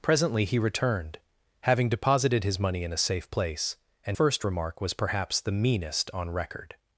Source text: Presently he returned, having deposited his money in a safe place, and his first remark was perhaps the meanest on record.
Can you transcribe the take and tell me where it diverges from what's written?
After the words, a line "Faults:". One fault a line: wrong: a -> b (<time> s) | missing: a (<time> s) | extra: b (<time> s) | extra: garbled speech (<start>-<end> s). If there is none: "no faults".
Presently he returned, having deposited his money in a safe place, and first remark was perhaps the meanest on record.
Faults:
missing: his (4.2 s)